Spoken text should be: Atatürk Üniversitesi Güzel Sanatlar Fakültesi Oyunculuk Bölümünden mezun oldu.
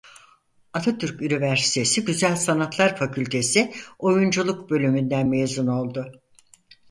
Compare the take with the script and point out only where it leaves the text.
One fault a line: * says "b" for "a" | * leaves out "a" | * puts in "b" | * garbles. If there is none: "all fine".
all fine